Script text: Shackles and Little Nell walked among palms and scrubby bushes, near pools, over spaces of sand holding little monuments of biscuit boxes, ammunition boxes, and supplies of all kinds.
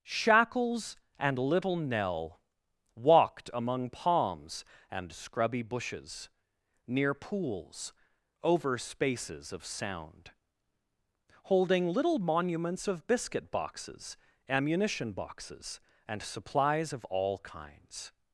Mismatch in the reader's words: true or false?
true